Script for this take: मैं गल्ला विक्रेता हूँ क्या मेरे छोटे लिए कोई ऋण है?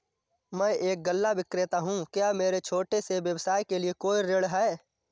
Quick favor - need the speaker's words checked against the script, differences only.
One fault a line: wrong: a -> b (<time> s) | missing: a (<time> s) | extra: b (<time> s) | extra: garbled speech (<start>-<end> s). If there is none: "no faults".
extra: एक (0.7 s)
extra: से व्यवसाय के (3.0 s)